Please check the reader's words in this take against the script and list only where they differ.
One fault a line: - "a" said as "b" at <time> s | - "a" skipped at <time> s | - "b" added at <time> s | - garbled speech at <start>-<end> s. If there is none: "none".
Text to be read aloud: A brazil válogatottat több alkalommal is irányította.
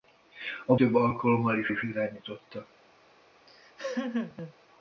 - "brazil válogatottat" skipped at 0.8 s
- "is" added at 1.7 s